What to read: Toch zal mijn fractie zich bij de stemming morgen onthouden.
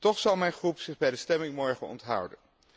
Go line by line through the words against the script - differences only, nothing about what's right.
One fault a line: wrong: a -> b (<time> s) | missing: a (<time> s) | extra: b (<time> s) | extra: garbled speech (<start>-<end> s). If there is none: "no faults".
no faults